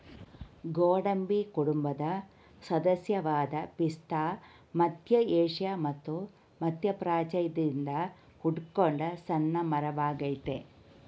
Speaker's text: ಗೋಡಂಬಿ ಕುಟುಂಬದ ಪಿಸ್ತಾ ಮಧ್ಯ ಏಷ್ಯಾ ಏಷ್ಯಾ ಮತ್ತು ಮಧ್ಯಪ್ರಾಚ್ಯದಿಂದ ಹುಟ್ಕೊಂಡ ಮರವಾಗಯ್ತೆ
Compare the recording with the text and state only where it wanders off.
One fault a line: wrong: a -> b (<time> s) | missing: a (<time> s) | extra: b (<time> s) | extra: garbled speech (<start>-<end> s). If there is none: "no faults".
extra: ಸದಸ್ಯವಾದ (2.6 s)
missing: ಏಷ್ಯಾ (5.7 s)
extra: ಸಣ್ಣ (9.3 s)